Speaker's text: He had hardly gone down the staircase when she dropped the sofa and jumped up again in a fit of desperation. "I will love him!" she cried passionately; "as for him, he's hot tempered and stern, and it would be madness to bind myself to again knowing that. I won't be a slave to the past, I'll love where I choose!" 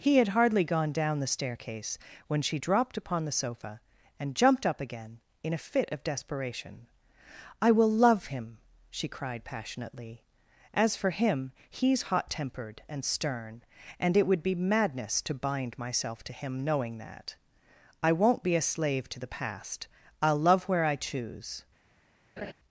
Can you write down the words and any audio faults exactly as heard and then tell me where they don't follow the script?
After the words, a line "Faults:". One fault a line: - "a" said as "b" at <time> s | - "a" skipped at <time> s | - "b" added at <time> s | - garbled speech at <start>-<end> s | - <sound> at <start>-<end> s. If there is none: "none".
He had hardly gone down the staircase when she dropped upon the sofa and jumped up again in a fit of desperation. "I will love him!" she cried passionately; "as for him, he's hot tempered and stern, and it would be madness to bind myself to him knowing that. I won't be a slave to the past, I'll love where I choose!"
Faults:
- "upon" added at 2.9 s
- "again" said as "him" at 16.3 s
- laugh at 22.4-22.5 s